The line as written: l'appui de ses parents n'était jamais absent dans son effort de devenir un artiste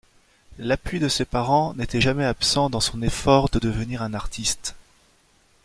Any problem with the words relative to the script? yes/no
no